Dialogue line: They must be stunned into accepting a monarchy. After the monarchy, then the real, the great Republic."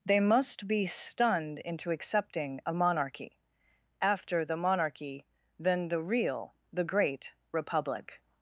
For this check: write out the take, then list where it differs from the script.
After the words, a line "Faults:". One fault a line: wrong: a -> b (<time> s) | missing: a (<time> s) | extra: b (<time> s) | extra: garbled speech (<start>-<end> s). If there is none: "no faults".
They must be stunned into accepting a monarchy. After the monarchy, then the real, the great Republic."
Faults:
no faults